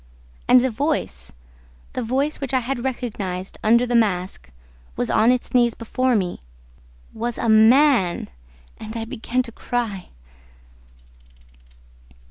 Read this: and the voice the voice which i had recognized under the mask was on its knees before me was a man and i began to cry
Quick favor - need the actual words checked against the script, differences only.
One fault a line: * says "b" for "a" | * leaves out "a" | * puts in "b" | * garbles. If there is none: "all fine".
all fine